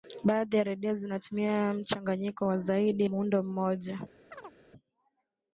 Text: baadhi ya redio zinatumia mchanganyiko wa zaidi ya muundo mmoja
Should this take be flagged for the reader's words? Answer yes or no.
yes